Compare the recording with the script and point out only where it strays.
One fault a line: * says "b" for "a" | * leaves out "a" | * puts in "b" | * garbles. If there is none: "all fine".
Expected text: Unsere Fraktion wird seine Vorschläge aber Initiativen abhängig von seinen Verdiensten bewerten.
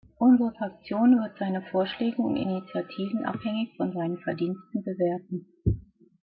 * says "und" for "aber"